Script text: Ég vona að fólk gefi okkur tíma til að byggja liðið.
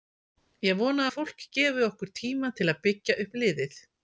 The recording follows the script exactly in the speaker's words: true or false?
false